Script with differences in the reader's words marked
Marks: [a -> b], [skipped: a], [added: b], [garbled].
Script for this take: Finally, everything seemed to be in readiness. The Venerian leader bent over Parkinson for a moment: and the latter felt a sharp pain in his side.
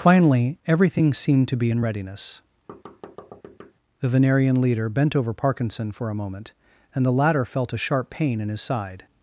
Finally, everything seemed to be in readiness. The Venerian leader bent over Parkinson for a moment: and the latter felt a sharp pain in his side.